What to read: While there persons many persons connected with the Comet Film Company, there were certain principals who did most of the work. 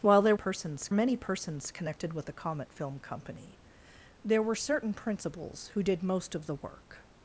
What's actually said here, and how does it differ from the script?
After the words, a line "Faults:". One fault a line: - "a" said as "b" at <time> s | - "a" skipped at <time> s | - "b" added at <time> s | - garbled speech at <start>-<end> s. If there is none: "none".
While there persons many persons connected with the Comet Film Company, there were certain principals who did most of the work.
Faults:
none